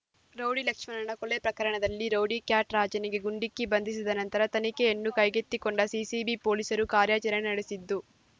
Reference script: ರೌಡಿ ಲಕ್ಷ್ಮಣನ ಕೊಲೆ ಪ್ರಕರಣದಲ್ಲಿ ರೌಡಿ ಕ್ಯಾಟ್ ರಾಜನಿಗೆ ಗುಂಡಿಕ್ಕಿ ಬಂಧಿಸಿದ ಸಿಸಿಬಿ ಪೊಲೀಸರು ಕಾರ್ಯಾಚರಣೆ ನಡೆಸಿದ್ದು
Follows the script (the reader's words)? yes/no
no